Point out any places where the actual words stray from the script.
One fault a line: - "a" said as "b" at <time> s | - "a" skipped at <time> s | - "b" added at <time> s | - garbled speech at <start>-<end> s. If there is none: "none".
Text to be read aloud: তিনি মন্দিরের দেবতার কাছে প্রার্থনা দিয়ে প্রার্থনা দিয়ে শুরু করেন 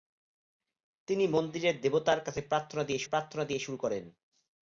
none